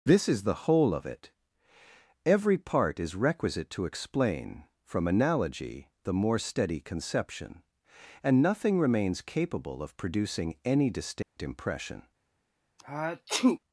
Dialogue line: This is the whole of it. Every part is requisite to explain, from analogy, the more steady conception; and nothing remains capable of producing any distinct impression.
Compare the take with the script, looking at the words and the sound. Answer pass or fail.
fail